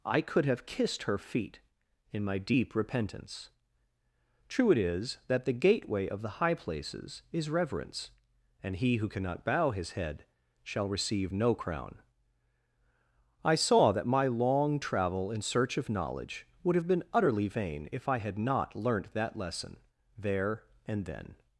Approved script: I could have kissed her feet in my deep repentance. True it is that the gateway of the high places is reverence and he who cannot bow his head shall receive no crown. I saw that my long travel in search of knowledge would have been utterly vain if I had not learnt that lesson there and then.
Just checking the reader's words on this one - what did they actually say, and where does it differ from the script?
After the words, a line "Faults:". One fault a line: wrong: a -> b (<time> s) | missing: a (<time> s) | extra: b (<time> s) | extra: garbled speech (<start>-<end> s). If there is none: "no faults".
I could have kissed her feet in my deep repentance. True it is that the gateway of the high places is reverence and he who cannot bow his head shall receive no crown. I saw that my long travel in search of knowledge would have been utterly vain if I had not learnt that lesson there and then.
Faults:
no faults